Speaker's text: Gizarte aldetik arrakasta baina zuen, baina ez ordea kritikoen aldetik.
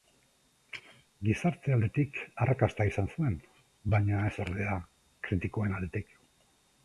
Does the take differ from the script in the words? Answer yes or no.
yes